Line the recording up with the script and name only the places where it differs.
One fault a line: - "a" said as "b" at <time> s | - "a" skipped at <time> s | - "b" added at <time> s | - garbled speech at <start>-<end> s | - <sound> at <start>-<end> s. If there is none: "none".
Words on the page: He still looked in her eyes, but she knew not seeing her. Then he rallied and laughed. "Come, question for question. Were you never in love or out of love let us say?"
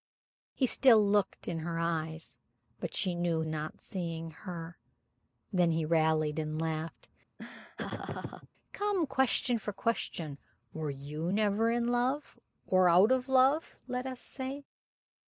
- laugh at 7.4-8.5 s